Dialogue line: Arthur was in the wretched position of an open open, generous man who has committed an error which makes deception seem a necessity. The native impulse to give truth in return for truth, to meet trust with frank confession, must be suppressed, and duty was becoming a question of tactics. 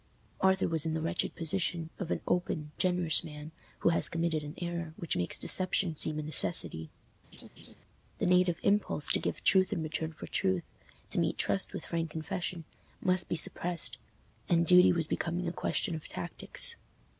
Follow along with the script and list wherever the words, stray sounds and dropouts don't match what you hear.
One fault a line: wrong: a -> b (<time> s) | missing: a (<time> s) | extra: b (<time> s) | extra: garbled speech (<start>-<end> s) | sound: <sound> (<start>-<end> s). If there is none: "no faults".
missing: open (2.7 s)
sound: laugh (7.3-7.8 s)